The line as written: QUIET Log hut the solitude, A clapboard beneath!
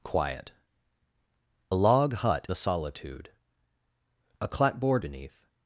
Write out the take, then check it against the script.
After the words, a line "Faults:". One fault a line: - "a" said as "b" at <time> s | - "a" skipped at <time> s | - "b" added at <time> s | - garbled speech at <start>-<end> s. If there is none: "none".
QUIET Log hut the solitude, A clapboard beneath!
Faults:
none